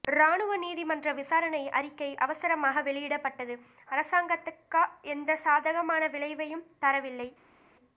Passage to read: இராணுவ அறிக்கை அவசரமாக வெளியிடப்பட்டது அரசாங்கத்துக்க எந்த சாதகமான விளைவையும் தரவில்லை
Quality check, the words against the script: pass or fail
fail